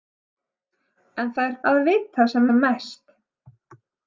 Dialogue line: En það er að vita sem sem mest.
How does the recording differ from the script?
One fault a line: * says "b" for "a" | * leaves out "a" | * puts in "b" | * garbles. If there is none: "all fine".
all fine